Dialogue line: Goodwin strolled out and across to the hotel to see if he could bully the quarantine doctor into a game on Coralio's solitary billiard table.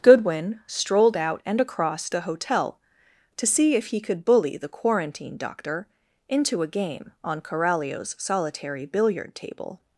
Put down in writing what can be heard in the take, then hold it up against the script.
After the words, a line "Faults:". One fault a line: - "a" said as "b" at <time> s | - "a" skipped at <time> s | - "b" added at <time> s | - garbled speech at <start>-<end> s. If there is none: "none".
Goodwin strolled out and across the hotel to see if he could bully the quarantine doctor into a game on Coralio's solitary billiard table.
Faults:
- "to" skipped at 2.1 s